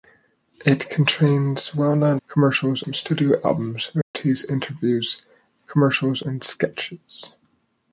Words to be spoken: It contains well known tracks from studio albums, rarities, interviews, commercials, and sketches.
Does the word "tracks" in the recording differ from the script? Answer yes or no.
yes